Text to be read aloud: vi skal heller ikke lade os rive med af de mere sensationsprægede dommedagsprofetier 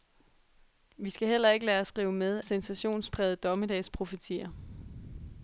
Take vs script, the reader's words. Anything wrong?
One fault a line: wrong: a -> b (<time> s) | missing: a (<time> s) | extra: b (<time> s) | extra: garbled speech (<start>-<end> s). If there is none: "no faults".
missing: af de mere (2.4 s)